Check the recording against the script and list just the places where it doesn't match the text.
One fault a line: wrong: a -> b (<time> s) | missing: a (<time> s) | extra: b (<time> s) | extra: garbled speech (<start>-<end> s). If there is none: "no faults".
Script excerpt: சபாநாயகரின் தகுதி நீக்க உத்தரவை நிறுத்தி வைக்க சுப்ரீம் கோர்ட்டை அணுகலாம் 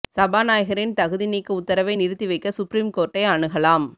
no faults